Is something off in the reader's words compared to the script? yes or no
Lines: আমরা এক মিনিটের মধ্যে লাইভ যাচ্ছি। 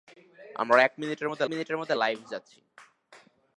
yes